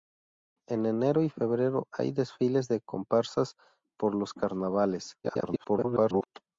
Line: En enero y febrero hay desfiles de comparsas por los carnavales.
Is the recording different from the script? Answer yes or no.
yes